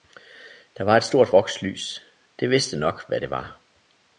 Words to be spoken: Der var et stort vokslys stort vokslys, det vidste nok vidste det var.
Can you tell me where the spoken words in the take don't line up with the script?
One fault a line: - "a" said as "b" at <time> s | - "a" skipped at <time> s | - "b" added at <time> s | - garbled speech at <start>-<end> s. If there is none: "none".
- "stort vokslys" skipped at 2.0 s
- "vidste" said as "hvad" at 3.1 s